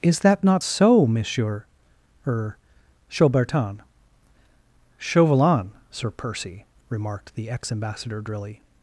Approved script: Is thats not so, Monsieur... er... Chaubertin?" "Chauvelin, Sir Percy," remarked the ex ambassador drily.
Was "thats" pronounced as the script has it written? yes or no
no